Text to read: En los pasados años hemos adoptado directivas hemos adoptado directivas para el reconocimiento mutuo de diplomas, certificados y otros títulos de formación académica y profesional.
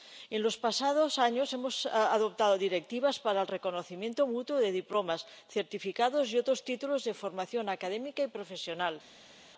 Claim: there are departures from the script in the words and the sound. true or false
true